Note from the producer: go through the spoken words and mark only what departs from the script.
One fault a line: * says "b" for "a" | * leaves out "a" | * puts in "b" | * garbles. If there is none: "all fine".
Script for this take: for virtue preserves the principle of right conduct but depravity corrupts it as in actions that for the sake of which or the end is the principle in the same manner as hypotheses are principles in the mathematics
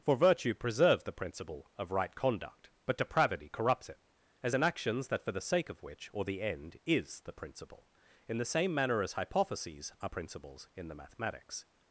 all fine